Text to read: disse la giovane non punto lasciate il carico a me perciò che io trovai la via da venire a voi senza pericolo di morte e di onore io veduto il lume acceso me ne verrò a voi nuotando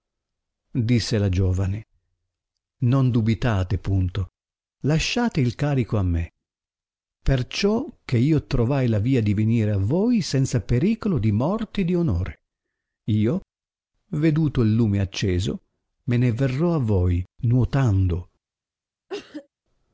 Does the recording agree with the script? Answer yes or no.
no